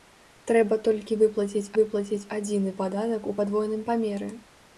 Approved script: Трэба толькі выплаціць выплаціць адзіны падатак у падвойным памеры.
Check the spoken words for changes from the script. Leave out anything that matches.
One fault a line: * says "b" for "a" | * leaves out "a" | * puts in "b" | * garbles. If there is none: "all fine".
all fine